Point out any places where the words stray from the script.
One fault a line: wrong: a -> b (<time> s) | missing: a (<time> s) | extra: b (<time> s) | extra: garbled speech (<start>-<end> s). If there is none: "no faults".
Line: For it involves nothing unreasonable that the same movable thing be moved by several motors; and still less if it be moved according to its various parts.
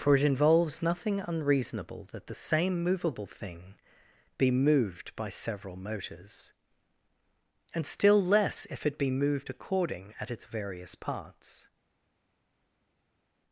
wrong: to -> at (10.2 s)